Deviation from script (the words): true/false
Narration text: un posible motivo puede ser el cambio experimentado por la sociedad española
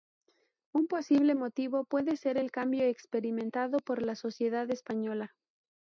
false